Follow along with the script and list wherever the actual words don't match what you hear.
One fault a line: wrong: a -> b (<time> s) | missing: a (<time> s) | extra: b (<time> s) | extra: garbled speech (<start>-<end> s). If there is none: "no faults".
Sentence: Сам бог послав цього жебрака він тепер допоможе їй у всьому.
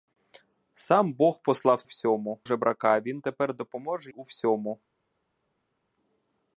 wrong: цього -> всьому (1.8 s)
missing: їй (4.1 s)